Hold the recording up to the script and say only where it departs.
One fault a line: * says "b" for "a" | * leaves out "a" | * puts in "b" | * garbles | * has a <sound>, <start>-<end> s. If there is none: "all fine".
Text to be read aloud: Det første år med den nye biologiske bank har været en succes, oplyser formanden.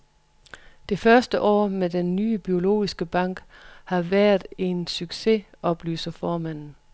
all fine